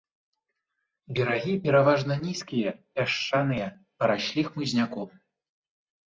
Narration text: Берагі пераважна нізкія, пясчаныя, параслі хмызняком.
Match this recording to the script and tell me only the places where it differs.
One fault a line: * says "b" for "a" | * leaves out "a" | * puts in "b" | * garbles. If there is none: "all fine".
all fine